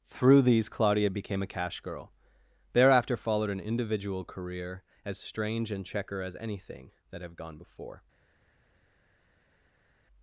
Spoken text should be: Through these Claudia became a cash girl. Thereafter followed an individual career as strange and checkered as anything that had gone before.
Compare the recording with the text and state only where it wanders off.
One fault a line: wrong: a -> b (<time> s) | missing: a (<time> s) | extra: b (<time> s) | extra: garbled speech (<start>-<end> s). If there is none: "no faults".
wrong: checkered -> checker (5.8 s)
wrong: had -> have (7.2 s)